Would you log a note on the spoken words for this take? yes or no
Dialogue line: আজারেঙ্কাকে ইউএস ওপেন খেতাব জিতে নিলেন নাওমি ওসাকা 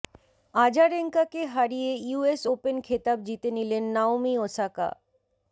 yes